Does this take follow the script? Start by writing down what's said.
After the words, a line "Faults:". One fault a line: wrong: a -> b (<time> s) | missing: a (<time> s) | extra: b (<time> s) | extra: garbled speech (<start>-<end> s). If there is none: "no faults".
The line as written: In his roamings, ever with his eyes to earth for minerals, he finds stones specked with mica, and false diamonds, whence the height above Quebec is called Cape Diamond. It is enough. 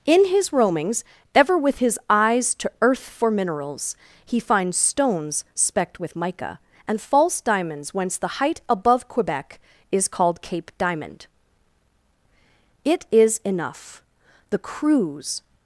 In his roamings, ever with his eyes to earth for minerals, he finds stones specked with mica, and false diamonds, whence the height above Quebec is called Cape Diamond. It is enough. The crews
Faults:
extra: The crews (14.5 s)